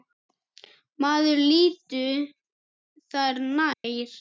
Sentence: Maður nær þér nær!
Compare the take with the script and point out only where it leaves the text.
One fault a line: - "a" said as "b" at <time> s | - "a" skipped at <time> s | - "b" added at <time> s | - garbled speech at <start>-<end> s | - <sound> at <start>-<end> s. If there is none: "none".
- "nær" said as "líttu" at 1.5 s
- dropout at 3.7-3.8 s